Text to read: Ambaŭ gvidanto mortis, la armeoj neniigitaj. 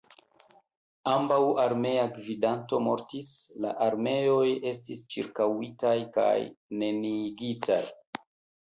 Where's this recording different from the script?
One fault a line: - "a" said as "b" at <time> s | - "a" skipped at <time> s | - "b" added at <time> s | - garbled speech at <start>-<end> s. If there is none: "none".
- "armea" added at 1.6 s
- "estis ĉirkaŭitaj kaj" added at 4.7 s